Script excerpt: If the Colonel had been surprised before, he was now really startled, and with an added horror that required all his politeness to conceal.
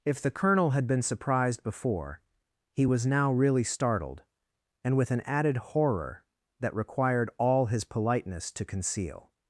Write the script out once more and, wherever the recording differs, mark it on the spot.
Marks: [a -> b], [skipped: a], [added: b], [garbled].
If the Colonel had been surprised before, he was now really startled, and with an added horror that required all his politeness to conceal.